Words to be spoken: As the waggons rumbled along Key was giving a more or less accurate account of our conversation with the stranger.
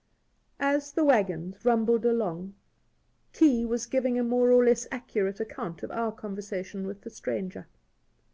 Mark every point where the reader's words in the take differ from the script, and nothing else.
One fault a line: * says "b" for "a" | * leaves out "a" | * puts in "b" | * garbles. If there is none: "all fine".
all fine